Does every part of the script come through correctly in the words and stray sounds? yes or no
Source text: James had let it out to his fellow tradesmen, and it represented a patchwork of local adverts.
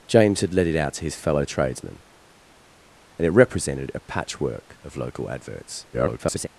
no